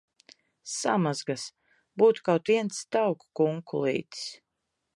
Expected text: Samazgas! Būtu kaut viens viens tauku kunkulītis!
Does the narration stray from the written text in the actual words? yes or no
yes